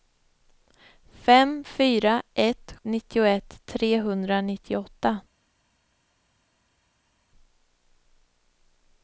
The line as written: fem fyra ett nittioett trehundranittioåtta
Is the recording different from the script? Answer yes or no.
no